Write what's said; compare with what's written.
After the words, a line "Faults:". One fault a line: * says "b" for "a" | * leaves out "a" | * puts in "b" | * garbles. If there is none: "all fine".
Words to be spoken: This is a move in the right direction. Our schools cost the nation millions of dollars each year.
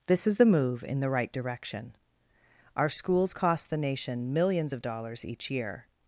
This is the move in the right direction. Our schools cost the nation millions of dollars each year.
Faults:
* says "the" for "a"